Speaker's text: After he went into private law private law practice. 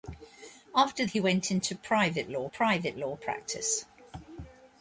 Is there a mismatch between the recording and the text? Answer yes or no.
no